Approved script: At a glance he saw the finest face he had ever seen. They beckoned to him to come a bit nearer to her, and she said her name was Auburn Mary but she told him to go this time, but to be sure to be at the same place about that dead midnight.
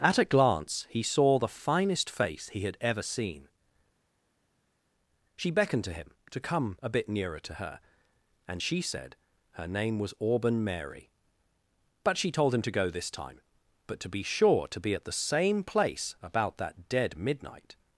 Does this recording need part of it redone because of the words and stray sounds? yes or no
yes